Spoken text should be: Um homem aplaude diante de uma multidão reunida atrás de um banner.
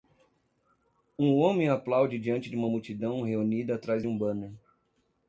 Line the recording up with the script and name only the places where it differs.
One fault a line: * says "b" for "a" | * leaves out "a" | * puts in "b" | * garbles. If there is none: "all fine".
all fine